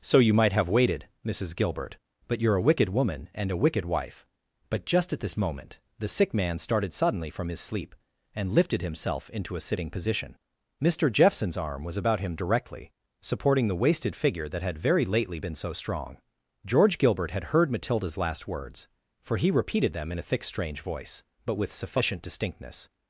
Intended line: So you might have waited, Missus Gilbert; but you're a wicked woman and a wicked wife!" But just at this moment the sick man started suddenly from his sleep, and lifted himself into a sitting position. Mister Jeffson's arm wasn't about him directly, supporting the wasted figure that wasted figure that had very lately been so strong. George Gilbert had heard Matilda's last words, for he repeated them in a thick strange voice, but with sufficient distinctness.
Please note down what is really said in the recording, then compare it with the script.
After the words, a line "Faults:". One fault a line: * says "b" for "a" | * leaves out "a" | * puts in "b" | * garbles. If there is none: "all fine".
So you might have waited, Missus Gilbert; but you're a wicked woman and a wicked wife!" But just at this moment the sick man started suddenly from his sleep, and lifted himself into a sitting position. Mister Jeffson's arm was about him directly, supporting the wasted figure that had very lately been so strong. George Gilbert had heard Matilda's last words, for he repeated them in a thick strange voice, but with sufficient distinctness.
Faults:
* says "was" for "wasn't"
* leaves out "wasted figure that"